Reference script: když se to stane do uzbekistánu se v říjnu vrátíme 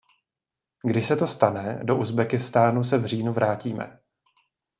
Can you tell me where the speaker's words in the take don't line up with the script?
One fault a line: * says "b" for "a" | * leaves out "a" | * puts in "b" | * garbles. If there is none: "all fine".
all fine